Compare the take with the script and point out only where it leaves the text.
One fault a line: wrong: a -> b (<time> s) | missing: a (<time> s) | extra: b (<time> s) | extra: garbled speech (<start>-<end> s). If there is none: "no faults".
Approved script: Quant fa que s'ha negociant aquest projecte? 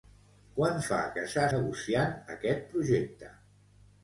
no faults